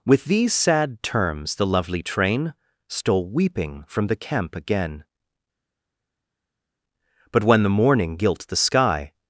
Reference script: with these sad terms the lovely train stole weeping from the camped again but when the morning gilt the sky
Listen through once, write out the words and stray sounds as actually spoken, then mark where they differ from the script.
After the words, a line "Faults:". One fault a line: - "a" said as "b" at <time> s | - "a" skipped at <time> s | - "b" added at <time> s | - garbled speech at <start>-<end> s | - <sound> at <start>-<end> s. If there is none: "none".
with these sad terms the lovely train stole weeping from the camp again but when the morning gilt the sky
Faults:
- "camped" said as "camp" at 4.2 s